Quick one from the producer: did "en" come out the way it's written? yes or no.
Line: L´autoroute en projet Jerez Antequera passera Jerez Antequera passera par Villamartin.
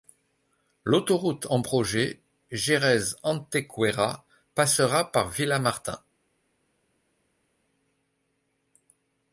yes